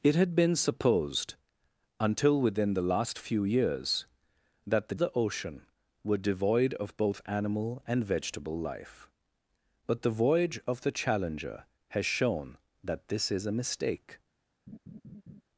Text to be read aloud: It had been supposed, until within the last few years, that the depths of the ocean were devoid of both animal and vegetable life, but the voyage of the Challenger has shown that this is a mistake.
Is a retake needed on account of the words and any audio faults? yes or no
yes